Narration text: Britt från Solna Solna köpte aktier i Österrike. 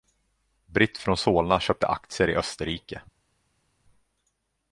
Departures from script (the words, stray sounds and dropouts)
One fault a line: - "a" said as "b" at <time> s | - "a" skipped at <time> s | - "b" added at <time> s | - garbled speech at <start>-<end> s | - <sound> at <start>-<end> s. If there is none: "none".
- "Solna" skipped at 1.6 s